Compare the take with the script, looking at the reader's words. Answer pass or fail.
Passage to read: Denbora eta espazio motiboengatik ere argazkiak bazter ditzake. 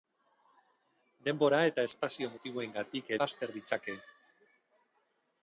fail